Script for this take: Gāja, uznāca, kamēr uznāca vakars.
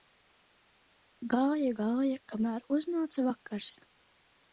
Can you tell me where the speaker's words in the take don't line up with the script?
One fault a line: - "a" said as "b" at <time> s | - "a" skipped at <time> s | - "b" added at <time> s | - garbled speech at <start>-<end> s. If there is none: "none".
- "uznāca" said as "gāja" at 1.8 s